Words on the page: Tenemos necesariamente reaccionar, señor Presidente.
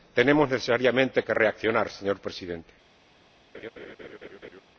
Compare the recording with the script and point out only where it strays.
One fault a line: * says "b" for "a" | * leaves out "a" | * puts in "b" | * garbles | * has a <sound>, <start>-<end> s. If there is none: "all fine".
* puts in "que"
* has a laugh, 3.5-4.6 s